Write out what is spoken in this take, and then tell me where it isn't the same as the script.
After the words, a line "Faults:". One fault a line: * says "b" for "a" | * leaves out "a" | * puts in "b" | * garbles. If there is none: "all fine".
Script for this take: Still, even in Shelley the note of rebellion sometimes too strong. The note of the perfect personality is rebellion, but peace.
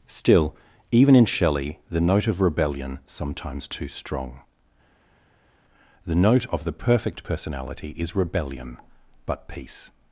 Still, even in Shelley the note of rebellion sometimes too strong. The note of the perfect personality is rebellion, but peace.
Faults:
all fine